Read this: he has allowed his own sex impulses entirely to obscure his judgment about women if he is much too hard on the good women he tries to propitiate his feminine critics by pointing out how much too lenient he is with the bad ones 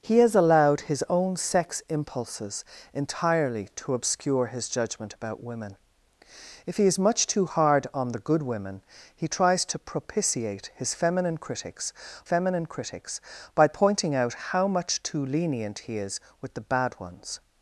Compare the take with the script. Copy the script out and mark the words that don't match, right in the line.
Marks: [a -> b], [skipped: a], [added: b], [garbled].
he has allowed his own sex impulses entirely to obscure his judgment about women if he is much too hard on the good women he tries to propitiate his feminine critics [added: feminine critics] by pointing out how much too lenient he is with the bad ones